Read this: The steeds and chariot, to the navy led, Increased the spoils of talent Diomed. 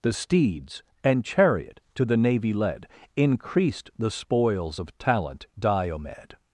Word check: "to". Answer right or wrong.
right